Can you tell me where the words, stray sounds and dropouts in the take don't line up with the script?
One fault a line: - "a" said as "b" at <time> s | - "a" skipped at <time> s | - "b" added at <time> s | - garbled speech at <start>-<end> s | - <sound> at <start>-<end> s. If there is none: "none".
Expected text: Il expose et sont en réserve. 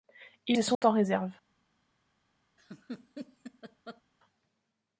- "expose" skipped at 0.6 s
- dropout at 0.7-0.8 s
- laugh at 2.6-4.0 s